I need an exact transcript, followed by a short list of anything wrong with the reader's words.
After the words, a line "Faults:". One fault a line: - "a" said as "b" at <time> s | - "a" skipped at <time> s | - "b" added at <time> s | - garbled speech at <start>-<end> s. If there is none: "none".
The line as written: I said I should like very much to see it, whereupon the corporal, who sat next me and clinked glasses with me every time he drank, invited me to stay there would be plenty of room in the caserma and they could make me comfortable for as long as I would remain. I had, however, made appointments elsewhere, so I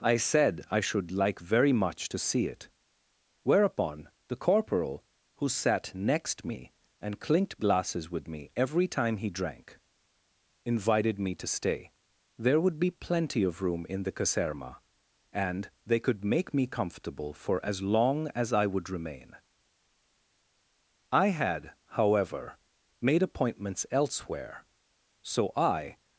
I said I should like very much to see it, whereupon the corporal, who sat next me and clinked glasses with me every time he drank, invited me to stay there would be plenty of room in the caserma and they could make me comfortable for as long as I would remain. I had, however, made appointments elsewhere, so I
Faults:
none